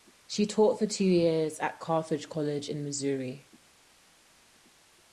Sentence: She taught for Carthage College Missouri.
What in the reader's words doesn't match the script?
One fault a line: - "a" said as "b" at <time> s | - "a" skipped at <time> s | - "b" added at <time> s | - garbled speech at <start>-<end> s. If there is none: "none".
- "two years at" added at 0.9 s
- "in" added at 2.7 s